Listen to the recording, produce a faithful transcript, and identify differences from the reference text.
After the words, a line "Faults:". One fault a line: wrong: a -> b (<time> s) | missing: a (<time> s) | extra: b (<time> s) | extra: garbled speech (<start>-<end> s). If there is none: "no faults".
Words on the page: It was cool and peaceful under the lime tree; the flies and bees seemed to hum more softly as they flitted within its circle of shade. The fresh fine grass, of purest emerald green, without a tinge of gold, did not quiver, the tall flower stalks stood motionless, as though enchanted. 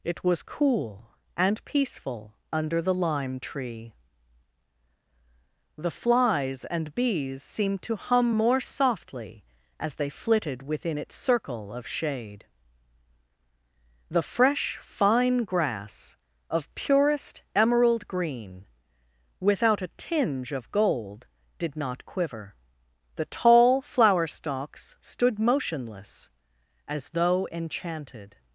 It was cool and peaceful under the lime tree; the flies and bees seemed to hum more softly as they flitted within its circle of shade. The fresh fine grass, of purest emerald green, without a tinge of gold, did not quiver, the tall flower stalks stood motionless, as though enchanted.
Faults:
no faults